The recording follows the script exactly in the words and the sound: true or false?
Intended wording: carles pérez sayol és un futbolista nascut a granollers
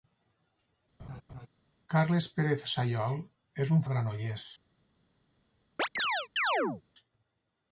false